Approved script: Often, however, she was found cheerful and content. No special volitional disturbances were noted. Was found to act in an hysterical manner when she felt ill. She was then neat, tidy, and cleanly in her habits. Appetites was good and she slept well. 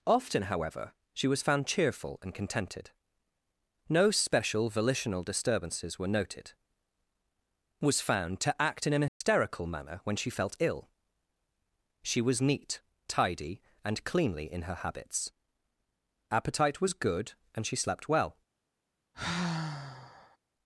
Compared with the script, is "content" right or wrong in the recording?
wrong